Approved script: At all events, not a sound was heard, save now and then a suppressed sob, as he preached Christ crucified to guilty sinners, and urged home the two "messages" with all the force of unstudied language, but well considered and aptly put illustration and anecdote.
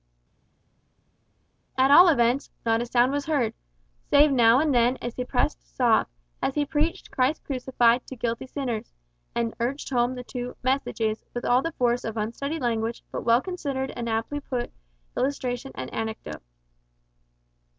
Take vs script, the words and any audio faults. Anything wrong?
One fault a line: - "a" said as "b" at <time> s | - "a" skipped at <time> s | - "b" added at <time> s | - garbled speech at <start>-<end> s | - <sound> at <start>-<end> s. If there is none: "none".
none